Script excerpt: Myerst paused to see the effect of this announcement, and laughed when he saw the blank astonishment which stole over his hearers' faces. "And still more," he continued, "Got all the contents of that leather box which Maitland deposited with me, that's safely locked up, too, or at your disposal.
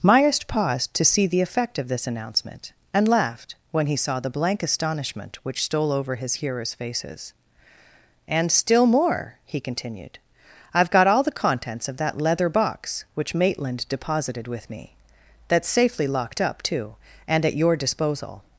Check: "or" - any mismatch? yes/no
yes